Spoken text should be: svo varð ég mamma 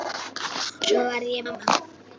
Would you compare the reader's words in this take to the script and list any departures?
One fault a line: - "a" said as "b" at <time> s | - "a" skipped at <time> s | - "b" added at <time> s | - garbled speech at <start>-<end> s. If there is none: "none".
none